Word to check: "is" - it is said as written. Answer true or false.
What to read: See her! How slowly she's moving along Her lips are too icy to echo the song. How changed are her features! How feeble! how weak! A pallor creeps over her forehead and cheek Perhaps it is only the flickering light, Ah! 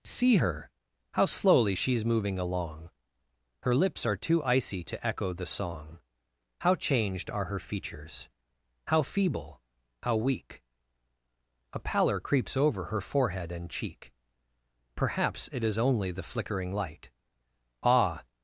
true